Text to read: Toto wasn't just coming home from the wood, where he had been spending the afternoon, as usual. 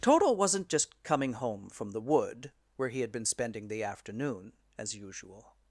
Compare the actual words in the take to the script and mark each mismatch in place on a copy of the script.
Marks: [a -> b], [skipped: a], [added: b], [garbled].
Toto wasn't just coming home from the wood, where he had been spending the afternoon, as usual.